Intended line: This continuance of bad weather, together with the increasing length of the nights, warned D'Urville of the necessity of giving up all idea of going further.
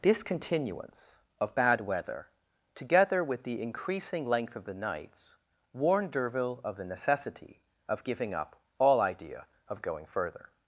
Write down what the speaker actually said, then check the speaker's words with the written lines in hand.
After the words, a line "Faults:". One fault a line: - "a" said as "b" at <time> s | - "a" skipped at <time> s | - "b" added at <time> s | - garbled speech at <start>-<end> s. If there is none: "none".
This continuance of bad weather, together with the increasing length of the nights, warned D'Urville of the necessity of giving up all idea of going further.
Faults:
none